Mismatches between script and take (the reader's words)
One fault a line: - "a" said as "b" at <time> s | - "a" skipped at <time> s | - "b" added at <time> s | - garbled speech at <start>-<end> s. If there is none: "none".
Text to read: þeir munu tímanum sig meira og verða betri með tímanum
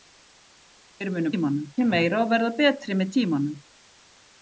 none